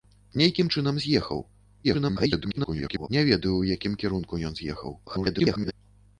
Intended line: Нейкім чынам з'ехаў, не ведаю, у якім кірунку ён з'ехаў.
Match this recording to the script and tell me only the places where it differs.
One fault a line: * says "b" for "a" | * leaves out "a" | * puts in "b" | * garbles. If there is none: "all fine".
* garbles
* garbles